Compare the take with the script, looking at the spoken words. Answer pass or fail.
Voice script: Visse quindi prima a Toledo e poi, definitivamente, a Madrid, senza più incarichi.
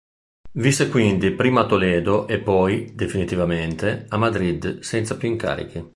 pass